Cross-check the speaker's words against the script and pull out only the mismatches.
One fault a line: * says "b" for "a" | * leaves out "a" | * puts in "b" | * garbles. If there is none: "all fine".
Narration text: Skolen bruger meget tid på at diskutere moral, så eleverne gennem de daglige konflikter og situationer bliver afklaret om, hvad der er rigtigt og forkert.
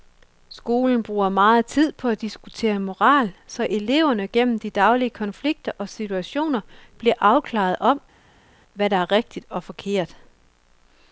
all fine